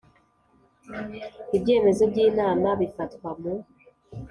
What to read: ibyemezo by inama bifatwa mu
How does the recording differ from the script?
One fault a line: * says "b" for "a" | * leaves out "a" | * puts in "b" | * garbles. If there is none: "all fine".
all fine